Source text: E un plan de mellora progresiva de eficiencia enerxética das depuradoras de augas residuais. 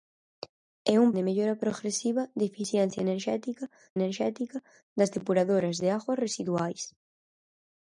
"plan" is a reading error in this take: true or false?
true